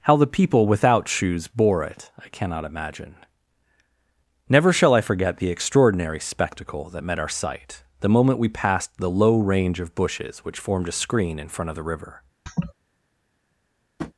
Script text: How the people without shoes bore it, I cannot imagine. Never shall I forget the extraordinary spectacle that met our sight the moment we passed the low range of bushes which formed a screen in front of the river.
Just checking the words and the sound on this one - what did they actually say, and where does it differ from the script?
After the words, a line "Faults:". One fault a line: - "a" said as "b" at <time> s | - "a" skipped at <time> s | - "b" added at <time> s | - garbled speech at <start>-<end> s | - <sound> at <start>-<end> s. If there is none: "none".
How the people without shoes bore it, I cannot imagine. Never shall I forget the extraordinary spectacle that met our sight the moment we passed the low range of bushes which formed a screen in front of the river.
Faults:
- laugh at 12.5-12.7 s
- tap at 14.0-14.1 s